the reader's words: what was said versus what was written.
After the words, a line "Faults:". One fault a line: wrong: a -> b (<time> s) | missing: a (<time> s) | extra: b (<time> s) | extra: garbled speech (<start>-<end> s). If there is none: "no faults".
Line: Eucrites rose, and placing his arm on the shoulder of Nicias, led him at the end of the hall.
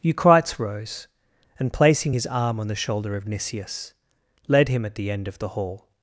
Eucrites rose, and placing his arm on the shoulder of Nicias, led him at the end of the hall.
Faults:
no faults